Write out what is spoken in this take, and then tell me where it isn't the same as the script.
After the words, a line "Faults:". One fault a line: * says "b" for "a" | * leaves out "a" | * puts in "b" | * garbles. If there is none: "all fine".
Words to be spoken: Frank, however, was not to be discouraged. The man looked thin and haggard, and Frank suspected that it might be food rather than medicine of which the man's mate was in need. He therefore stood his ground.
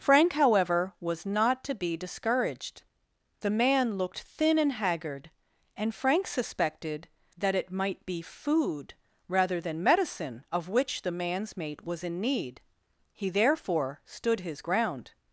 Frank, however, was not to be discouraged. The man looked thin and haggard, and Frank suspected that it might be food rather than medicine of which the man's mate was in need. He therefore stood his ground.
Faults:
all fine